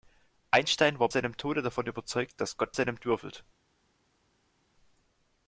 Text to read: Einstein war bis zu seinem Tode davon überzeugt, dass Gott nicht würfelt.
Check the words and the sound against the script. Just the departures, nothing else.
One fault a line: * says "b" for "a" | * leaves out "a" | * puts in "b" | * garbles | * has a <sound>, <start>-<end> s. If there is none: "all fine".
* leaves out "bis zu"
* says "seinem" for "nicht"